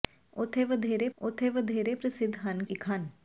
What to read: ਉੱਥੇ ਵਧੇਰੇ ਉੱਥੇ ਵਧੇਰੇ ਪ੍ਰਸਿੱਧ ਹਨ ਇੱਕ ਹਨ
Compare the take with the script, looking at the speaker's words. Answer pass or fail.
pass